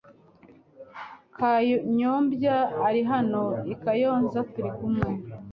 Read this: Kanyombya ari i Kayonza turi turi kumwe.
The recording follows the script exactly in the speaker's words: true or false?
false